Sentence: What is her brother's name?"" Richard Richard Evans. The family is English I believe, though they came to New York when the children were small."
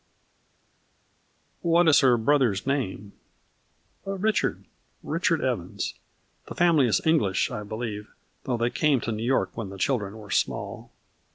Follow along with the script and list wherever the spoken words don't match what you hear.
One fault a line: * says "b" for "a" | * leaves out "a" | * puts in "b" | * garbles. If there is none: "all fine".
all fine